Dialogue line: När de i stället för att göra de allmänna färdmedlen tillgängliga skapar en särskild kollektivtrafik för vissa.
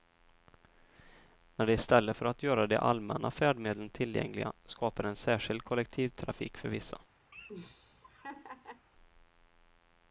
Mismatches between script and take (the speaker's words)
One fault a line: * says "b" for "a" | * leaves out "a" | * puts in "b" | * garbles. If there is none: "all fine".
all fine